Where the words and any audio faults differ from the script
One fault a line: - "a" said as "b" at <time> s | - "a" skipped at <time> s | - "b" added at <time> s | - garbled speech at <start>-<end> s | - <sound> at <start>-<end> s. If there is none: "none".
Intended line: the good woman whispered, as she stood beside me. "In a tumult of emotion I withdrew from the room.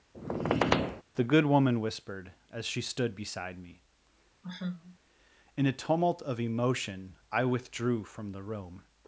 - squeak at 0.1-1.0 s
- sigh at 4.4-5.0 s